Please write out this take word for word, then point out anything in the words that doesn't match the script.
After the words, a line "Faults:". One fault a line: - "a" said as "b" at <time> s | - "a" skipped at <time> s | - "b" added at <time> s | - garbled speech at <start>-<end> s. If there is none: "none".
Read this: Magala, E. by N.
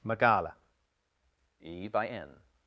Magala, E. by N.
Faults:
none